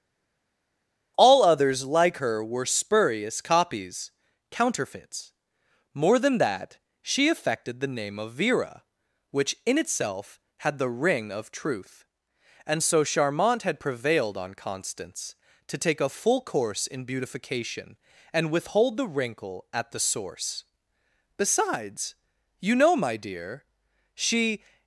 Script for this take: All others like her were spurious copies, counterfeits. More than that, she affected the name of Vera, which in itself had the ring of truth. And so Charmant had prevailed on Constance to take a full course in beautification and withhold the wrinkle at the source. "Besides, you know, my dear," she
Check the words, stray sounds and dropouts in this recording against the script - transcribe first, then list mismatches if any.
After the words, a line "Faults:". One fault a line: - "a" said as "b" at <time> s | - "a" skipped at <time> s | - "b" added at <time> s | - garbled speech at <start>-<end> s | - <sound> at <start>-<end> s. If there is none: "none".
All others like her were spurious copies, counterfeits. More than that, she affected the name of Vera, which in itself had the ring of truth. And so Charmant had prevailed on Constance to take a full course in beautification and withhold the wrinkle at the source. "Besides, you know, my dear," she
Faults:
none